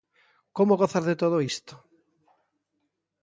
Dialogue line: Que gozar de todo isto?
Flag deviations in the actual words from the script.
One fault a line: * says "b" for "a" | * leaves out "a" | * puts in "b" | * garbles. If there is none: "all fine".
* says "Como" for "Que"